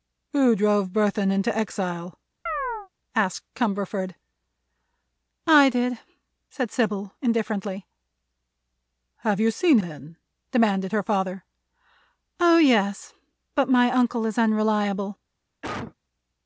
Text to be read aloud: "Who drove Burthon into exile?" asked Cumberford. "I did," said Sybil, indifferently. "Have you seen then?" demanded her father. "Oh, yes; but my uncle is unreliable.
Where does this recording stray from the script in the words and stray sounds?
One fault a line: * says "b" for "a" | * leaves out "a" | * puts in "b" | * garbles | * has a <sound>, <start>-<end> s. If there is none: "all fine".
* has a chirp, 2.5-2.9 s
* has a cough, 15.6-15.9 s